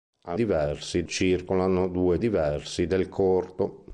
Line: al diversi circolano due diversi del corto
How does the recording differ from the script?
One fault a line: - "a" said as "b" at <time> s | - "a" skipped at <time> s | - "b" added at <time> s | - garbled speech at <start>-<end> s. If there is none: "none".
none